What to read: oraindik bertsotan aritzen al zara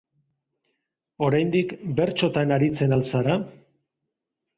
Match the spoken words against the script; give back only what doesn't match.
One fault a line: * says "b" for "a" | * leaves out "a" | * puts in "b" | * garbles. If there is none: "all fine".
all fine